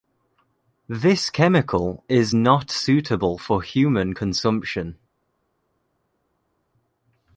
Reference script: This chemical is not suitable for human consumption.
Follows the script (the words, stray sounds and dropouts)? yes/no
yes